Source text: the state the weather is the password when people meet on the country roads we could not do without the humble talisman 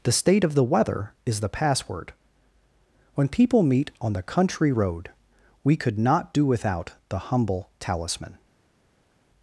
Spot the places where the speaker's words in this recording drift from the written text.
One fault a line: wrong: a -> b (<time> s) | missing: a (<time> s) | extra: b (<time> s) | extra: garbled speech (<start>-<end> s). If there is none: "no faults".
extra: of (0.4 s)
wrong: roads -> road (4.7 s)